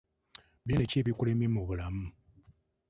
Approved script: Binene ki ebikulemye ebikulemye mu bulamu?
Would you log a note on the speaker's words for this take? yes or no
yes